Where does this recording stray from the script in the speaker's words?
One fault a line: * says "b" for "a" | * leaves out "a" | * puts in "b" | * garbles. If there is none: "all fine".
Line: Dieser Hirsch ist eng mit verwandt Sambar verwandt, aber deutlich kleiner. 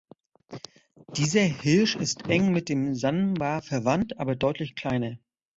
* says "dem" for "verwandt"